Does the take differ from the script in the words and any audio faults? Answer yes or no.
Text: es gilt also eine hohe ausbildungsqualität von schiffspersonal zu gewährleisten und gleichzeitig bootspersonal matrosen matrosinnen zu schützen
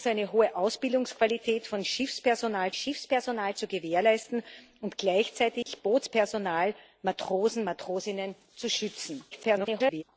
yes